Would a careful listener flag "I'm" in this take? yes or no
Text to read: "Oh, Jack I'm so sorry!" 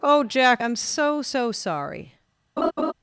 no